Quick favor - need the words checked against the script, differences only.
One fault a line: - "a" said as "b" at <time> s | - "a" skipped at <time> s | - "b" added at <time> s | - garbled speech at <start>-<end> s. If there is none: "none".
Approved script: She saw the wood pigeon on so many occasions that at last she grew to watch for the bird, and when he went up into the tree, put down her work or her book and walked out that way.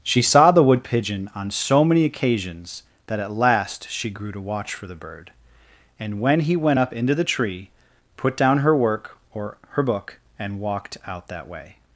none